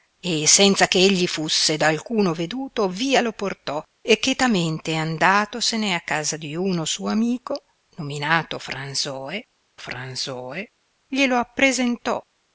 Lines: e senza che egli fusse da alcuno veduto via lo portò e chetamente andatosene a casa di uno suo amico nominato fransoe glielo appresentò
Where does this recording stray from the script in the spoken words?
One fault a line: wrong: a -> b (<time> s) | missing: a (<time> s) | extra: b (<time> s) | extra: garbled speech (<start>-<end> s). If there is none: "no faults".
extra: fransoe (9.8 s)